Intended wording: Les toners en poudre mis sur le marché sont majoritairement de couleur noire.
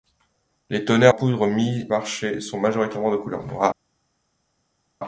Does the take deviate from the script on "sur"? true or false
true